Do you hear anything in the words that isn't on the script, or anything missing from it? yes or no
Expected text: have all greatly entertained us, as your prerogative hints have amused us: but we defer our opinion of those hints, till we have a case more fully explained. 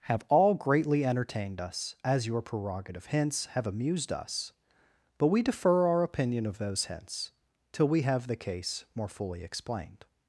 yes